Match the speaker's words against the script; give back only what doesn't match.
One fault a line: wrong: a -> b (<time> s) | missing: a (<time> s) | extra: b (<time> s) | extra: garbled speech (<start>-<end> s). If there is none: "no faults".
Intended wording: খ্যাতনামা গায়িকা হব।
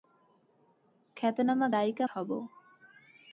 no faults